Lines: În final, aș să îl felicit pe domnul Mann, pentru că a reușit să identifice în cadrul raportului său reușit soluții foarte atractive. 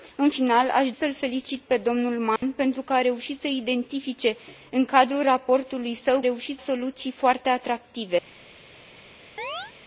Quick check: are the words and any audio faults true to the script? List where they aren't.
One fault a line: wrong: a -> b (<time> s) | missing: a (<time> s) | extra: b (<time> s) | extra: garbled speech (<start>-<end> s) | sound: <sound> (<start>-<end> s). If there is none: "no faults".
sound: dropout (2.4-2.4 s)
sound: chirp (9.4-9.7 s)